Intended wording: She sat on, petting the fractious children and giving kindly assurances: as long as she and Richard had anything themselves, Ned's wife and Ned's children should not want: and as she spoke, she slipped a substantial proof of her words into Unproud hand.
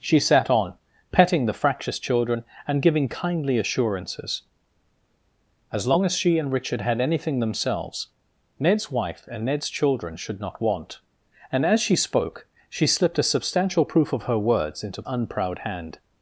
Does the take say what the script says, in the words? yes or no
yes